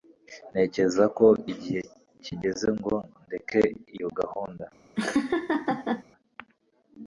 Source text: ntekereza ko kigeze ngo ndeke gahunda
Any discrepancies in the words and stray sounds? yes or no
yes